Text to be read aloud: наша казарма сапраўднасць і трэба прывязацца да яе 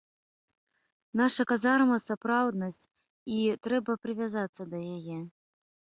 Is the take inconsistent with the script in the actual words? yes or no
no